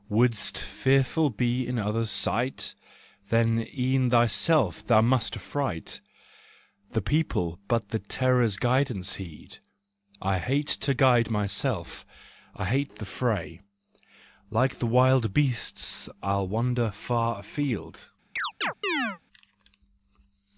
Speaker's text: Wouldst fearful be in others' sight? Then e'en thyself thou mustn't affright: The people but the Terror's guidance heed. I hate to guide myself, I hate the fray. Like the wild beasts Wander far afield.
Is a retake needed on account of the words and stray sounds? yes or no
yes